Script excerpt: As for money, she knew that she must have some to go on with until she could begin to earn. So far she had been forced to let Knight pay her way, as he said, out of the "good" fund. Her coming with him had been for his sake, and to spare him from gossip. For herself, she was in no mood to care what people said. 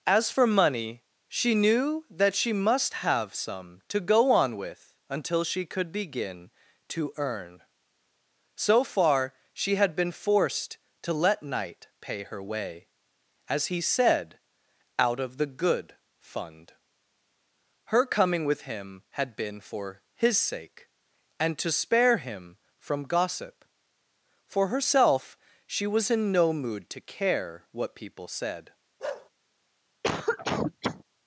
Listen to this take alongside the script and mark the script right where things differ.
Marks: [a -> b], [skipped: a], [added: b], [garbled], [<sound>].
As for money, she knew that she must have some to go on with until she could begin to earn. So far she had been forced to let Knight pay her way, as he said, out of the "good" fund. Her coming with him had been for his sake, and to spare him from gossip. For herself, she was in no mood to care what people said. [bark] [cough]